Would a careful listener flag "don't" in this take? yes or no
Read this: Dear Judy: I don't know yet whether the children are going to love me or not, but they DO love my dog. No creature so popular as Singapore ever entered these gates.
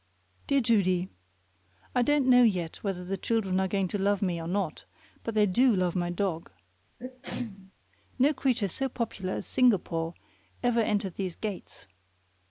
no